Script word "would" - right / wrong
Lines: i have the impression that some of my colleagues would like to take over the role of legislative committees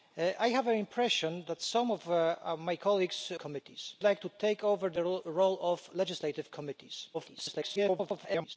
wrong